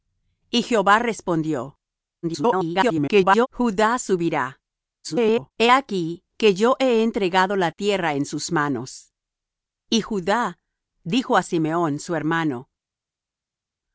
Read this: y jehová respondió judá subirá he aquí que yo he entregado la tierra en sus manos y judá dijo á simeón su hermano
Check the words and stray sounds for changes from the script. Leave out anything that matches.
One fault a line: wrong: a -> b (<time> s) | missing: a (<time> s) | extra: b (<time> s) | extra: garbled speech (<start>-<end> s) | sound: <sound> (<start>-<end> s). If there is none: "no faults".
extra: garbled speech (2.2-3.5 s)
extra: garbled speech (5.0-5.5 s)